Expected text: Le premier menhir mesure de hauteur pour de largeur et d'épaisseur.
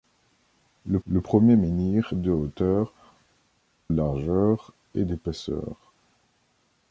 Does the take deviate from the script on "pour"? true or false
true